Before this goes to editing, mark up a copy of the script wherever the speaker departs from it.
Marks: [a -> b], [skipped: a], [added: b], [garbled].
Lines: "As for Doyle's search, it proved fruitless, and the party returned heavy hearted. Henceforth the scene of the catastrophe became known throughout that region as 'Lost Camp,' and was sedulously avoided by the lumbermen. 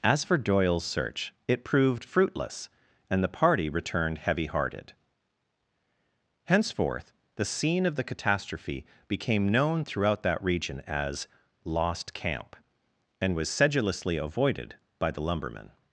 "As for Doyle's search, it proved fruitless, and the party returned heavy hearted. Henceforth the scene of the catastrophe became known throughout that region as 'Lost Camp,' and was sedulously avoided by the lumbermen.